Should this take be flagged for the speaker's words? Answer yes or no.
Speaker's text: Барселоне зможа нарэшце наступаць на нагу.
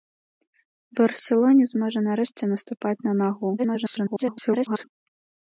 yes